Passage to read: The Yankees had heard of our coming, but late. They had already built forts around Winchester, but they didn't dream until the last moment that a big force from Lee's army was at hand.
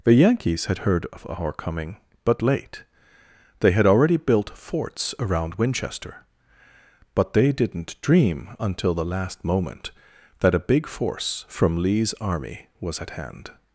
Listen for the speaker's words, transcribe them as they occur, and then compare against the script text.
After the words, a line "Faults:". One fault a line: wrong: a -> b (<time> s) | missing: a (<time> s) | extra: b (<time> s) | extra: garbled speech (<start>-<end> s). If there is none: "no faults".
The Yankees had heard of our coming, but late. They had already built forts around Winchester, but they didn't dream until the last moment that a big force from Lee's army was at hand.
Faults:
no faults